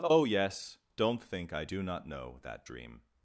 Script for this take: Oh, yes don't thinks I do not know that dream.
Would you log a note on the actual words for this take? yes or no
yes